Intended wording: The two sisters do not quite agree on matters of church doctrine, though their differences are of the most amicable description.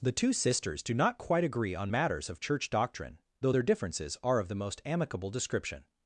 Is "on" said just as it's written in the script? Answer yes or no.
yes